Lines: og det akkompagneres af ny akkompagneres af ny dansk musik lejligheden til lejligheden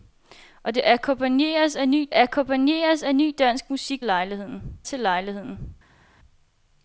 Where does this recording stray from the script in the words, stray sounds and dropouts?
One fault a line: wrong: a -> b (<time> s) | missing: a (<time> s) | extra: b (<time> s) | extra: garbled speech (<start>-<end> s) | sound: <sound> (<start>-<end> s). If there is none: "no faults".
no faults